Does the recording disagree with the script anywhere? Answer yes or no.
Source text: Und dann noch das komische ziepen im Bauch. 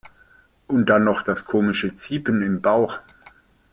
no